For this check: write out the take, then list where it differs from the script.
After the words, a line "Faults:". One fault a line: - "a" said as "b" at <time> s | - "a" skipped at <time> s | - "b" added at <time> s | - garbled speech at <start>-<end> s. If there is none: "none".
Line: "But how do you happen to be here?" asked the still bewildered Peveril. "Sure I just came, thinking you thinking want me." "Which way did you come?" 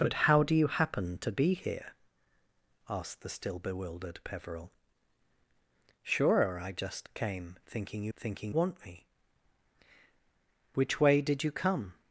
"But how do you happen to be here?" asked the still bewildered Peveril. "Sure I just came, thinking you thinking want me." "Which way did you come?"
Faults:
none